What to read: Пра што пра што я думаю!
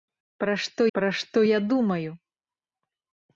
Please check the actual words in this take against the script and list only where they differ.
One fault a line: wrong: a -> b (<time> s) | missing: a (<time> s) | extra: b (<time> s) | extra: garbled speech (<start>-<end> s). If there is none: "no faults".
no faults